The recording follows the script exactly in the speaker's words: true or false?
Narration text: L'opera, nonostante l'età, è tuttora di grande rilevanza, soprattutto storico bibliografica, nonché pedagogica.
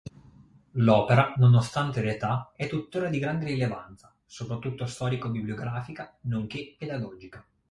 true